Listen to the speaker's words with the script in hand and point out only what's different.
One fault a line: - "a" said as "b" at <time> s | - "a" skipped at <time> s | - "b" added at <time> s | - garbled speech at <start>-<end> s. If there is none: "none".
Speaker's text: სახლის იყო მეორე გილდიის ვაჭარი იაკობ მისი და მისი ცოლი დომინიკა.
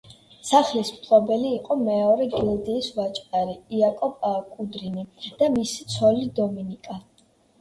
- "მფლობელი" added at 0.9 s
- "მისი" said as "კუდრინი" at 4.5 s